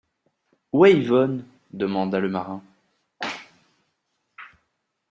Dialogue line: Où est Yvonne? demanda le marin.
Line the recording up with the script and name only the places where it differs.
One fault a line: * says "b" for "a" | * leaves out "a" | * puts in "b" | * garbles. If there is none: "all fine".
all fine